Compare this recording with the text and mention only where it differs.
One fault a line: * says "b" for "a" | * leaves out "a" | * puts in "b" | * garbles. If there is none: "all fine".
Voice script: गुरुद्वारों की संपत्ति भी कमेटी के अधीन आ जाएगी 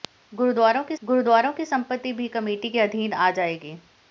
* puts in "गुरुद्वारों की"